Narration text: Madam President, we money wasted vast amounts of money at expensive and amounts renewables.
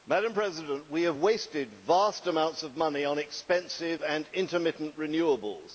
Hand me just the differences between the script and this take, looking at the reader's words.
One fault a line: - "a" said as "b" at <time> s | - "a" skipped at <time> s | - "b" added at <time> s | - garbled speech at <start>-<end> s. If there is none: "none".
- "money" said as "have" at 1.0 s
- "at" said as "on" at 3.0 s
- "amounts" said as "intermittent" at 4.3 s